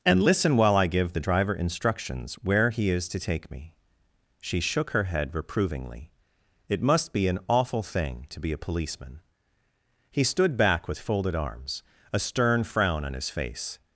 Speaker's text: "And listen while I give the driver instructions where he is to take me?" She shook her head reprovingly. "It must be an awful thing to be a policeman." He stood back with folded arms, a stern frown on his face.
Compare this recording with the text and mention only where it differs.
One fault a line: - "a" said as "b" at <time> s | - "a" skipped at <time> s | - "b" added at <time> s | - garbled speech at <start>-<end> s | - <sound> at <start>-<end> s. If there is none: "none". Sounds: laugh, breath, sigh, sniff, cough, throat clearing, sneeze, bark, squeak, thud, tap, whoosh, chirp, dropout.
none